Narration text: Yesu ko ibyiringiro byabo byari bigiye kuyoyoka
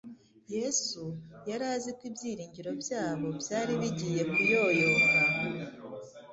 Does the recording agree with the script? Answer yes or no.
no